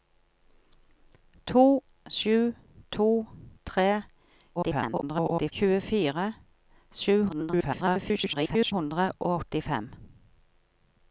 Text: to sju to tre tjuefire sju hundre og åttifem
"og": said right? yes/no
yes